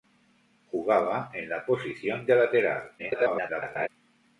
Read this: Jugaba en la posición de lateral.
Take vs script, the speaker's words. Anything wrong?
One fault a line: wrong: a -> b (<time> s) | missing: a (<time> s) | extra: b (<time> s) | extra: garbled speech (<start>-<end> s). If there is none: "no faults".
extra: garbled speech (3.0-3.9 s)